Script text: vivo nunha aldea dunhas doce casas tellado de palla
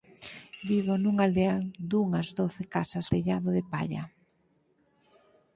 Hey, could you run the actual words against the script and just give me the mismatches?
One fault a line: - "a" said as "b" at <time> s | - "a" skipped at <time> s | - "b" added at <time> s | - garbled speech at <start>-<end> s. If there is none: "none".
none